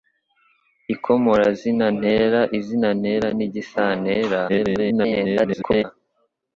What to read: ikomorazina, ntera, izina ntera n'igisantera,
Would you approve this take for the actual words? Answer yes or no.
no